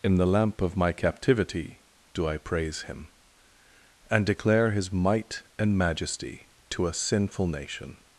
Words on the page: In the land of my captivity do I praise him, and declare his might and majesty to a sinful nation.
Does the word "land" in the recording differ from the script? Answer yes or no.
yes